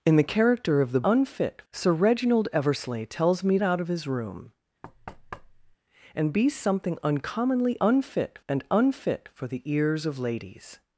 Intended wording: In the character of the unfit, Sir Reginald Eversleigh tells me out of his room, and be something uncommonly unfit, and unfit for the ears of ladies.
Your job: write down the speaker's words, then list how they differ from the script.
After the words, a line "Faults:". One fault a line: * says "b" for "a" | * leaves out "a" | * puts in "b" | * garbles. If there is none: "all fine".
In the character of the unfit, Sir Reginald Eversleigh tells me out of his room, and be something uncommonly unfit, and unfit for the ears of ladies.
Faults:
all fine